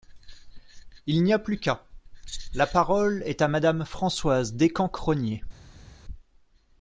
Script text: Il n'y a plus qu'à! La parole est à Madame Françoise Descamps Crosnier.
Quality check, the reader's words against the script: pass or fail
pass